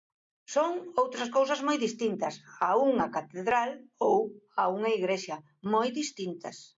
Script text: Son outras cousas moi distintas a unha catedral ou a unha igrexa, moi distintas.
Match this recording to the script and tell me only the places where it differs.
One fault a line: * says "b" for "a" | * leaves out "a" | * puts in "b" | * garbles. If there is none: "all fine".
all fine